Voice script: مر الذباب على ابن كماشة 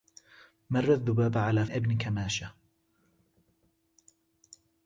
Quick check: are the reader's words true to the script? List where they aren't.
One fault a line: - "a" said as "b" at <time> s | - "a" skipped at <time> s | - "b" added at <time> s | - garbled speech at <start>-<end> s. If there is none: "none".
none